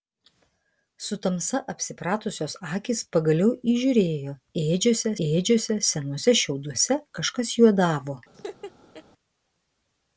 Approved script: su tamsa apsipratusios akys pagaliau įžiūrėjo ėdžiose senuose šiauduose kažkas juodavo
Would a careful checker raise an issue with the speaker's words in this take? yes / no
yes